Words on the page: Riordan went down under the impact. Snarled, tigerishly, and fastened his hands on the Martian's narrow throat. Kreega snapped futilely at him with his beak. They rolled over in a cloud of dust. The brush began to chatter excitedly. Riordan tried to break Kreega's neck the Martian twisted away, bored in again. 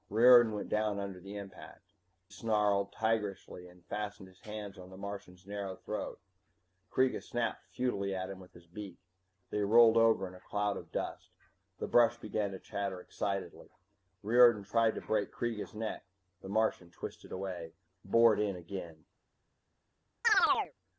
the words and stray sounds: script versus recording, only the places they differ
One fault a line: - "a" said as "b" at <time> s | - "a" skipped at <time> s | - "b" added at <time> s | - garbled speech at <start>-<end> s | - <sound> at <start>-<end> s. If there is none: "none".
- chirp at 20.2-20.7 s